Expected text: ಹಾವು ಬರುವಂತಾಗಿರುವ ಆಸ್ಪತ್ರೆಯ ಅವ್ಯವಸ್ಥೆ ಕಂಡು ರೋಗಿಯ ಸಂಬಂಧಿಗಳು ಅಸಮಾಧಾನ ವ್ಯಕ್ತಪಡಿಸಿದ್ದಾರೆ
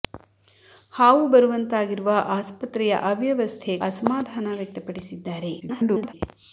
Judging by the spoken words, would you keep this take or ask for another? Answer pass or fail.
fail